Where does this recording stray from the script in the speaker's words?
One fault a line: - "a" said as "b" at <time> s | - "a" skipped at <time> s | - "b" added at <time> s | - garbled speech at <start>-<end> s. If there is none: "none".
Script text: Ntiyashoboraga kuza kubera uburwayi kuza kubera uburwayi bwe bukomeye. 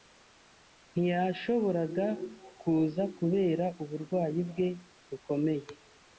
- "kuza kubera uburwayi" skipped at 4.4 s